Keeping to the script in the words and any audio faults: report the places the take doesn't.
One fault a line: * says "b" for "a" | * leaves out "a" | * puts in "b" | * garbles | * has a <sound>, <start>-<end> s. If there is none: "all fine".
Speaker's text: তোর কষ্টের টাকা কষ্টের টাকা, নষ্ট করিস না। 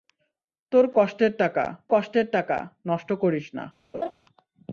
* has a laugh, 3.9-4.1 s